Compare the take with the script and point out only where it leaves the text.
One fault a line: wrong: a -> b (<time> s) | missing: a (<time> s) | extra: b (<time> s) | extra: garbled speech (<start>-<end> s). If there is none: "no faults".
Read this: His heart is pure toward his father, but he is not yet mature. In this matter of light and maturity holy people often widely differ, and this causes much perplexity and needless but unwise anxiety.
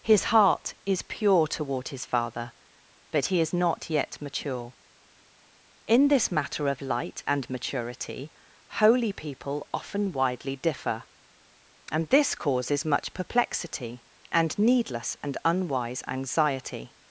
wrong: but -> and (15.2 s)